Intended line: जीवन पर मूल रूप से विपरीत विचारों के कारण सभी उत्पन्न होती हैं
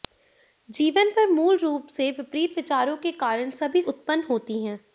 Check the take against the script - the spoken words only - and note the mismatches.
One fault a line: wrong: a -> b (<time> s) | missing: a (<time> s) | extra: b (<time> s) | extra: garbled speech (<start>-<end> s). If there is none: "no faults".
no faults